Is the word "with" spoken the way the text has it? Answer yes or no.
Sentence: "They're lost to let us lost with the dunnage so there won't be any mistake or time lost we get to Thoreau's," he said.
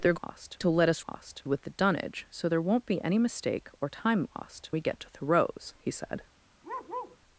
yes